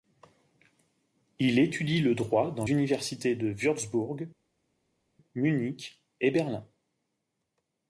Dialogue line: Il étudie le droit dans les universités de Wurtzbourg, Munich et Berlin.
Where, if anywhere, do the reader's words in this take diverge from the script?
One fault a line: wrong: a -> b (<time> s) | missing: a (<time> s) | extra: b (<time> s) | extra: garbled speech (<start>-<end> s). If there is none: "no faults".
missing: les (2.6 s)